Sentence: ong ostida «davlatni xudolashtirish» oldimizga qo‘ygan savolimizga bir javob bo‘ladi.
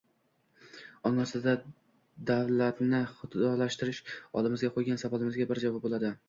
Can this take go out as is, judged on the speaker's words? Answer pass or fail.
pass